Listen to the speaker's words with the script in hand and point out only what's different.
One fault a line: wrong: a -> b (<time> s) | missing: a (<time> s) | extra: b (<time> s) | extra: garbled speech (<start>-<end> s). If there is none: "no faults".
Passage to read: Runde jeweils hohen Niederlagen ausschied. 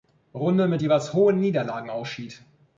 extra: mit (0.7 s)